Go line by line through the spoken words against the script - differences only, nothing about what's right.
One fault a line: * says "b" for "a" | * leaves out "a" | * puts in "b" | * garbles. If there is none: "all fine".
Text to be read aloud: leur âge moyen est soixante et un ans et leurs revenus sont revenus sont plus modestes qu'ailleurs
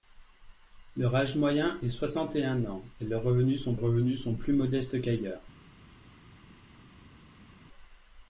all fine